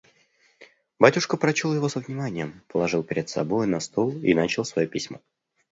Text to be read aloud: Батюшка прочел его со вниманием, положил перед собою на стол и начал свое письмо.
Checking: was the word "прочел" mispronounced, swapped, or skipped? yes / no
no